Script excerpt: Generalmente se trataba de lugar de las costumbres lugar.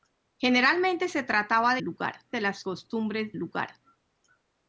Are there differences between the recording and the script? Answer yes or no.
no